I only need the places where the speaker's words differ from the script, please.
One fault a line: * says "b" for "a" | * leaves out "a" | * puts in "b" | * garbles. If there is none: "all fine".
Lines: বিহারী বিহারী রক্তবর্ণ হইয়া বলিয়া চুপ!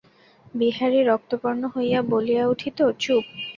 * leaves out "বিহারী"
* puts in "উঠিত"